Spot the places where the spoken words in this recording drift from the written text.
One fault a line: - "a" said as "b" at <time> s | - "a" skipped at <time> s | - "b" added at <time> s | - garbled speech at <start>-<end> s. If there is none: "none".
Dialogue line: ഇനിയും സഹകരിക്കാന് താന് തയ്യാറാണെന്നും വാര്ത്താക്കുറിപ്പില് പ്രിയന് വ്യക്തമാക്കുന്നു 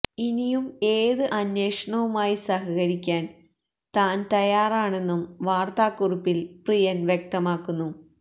- "ഏത് അന്വേഷണവുമായി" added at 0.9 s